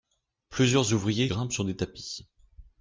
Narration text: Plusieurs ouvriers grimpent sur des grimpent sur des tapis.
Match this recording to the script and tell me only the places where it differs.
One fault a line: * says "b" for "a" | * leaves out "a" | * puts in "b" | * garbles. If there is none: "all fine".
* leaves out "grimpent sur des"